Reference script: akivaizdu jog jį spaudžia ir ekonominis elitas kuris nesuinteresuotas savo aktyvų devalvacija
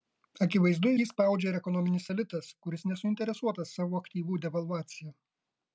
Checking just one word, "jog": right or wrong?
wrong